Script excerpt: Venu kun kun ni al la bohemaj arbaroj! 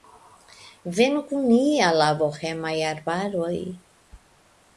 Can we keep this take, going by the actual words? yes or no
no